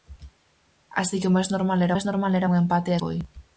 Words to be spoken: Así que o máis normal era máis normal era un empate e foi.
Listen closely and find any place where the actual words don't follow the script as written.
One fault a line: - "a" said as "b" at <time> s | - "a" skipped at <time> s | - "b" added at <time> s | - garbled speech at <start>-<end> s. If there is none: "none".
none